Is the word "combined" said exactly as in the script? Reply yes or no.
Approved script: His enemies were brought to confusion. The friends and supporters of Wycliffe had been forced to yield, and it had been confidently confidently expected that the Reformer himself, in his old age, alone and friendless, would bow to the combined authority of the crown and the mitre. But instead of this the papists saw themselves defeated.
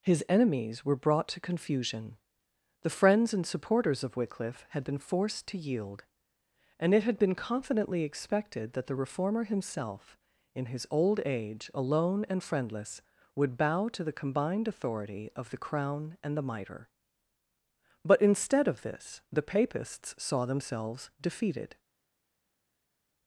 yes